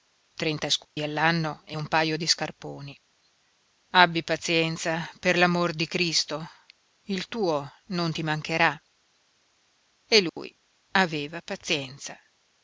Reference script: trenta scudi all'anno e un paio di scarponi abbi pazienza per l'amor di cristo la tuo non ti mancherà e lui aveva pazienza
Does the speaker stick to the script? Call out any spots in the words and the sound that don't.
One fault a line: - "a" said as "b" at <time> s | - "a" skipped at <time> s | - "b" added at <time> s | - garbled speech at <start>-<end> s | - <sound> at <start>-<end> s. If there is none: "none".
- dropout at 0.8-1.0 s
- "la" said as "il" at 7.0 s
- dropout at 10.3-10.4 s